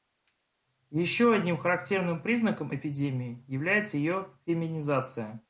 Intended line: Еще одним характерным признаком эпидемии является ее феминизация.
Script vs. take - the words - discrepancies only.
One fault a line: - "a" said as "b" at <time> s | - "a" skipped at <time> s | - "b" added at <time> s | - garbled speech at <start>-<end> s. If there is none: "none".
none